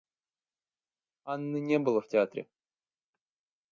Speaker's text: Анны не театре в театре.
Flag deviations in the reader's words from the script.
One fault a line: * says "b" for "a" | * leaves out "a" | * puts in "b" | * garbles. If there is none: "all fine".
* says "было" for "театре"